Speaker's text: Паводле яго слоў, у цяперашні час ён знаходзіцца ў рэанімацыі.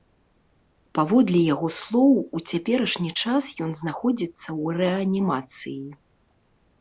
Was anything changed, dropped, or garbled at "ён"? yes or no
no